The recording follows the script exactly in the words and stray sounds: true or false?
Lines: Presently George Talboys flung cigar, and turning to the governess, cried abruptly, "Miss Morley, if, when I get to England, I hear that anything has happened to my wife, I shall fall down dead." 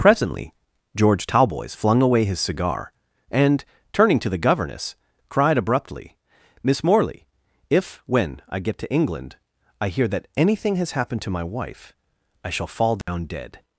false